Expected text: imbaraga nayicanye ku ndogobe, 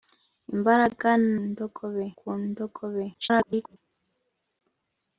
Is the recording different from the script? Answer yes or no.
yes